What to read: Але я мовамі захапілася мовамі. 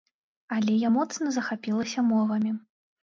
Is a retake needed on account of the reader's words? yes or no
yes